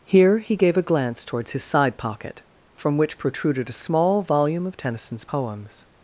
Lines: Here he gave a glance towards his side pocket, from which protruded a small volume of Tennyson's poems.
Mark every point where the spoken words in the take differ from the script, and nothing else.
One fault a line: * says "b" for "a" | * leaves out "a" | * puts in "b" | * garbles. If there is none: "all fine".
all fine